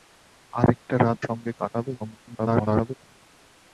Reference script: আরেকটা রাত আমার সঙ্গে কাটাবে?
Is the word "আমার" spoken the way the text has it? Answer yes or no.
no